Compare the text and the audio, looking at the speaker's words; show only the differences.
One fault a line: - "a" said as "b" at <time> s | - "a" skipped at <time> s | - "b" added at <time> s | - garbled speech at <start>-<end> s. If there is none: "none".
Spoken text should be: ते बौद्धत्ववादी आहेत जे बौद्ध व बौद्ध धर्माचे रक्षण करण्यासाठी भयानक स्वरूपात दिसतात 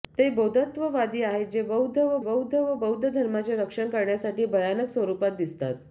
- "व बौद्ध" added at 2.6 s